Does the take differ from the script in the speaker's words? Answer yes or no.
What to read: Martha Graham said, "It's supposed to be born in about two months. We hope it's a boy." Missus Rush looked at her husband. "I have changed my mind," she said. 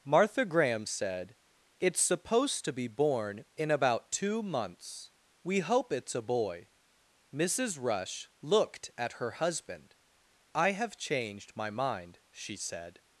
no